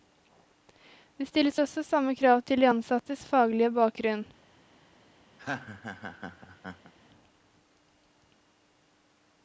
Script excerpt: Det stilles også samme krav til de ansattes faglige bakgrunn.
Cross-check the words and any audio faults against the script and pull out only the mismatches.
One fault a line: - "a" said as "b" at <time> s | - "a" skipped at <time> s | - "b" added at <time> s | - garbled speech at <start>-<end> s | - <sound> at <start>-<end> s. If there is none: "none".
- laugh at 5.4-6.9 s